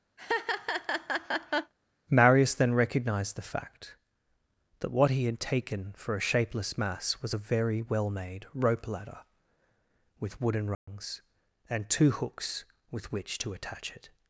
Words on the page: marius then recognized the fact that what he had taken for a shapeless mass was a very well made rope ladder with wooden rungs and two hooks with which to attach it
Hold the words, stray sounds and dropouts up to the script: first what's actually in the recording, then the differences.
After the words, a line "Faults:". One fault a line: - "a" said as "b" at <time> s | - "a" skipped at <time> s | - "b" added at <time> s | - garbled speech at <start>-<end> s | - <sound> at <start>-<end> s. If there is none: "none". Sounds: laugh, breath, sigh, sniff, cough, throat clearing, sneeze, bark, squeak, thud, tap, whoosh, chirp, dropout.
marius then recognized the fact that what he had taken for a shapeless mass was a very well made rope ladder with wooden rungs and two hooks with which to attach it
Faults:
- laugh at 0.2-1.7 s
- dropout at 10.7-10.9 s